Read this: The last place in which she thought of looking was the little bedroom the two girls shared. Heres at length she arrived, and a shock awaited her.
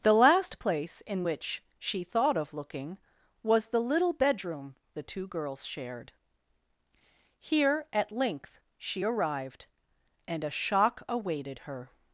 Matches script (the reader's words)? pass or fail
fail